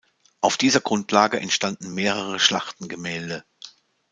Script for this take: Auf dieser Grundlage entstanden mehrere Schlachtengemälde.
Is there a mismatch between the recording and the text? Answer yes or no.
no